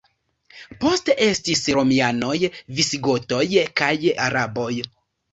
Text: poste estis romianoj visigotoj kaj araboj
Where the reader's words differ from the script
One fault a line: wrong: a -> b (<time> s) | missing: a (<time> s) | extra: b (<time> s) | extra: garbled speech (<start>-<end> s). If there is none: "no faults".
no faults